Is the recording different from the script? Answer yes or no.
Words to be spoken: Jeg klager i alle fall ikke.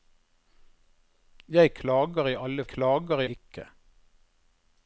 yes